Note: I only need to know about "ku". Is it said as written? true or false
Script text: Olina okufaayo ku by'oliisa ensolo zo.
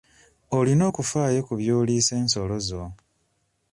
true